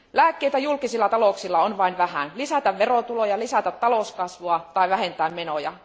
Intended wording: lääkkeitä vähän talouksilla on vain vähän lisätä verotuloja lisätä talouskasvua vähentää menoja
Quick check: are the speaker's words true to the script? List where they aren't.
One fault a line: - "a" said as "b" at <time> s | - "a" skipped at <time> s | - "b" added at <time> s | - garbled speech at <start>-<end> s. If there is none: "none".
- "vähän" said as "julkisilla" at 0.6 s
- "tai" added at 4.7 s